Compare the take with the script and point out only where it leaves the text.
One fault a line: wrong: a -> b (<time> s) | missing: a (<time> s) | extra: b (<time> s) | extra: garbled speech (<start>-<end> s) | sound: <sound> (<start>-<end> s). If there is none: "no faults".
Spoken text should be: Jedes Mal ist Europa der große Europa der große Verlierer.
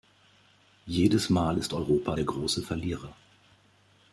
missing: Europa der große (2.6 s)